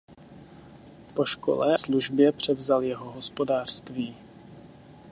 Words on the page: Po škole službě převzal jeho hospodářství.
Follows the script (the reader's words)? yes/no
yes